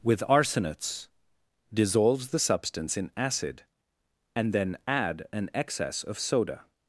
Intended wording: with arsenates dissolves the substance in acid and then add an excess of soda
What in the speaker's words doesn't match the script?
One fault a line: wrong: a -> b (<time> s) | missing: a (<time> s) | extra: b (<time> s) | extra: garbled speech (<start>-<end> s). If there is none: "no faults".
no faults